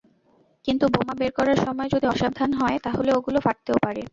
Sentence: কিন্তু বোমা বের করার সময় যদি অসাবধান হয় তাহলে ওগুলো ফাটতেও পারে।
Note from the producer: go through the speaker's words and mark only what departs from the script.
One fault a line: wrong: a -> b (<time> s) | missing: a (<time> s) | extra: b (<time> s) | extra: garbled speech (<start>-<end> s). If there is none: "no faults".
no faults